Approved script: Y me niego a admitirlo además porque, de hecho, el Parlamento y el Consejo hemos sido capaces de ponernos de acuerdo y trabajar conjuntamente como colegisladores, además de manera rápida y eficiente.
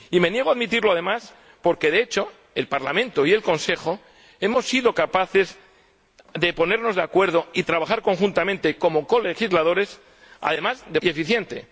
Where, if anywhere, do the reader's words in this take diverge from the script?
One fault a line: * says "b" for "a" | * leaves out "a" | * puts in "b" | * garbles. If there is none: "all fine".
* leaves out "manera rápida"